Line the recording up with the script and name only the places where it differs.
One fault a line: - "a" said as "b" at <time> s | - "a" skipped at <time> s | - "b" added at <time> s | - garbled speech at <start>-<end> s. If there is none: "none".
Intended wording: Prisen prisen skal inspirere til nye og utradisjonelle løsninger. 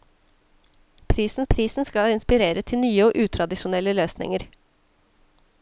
none